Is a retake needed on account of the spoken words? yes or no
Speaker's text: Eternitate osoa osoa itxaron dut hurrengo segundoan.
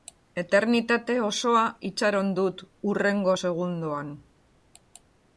yes